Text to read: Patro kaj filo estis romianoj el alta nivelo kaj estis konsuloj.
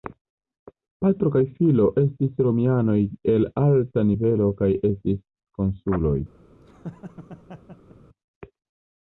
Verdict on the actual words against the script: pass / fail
pass